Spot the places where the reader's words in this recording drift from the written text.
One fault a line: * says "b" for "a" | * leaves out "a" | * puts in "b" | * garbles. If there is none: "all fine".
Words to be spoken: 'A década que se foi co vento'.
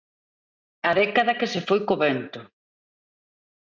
all fine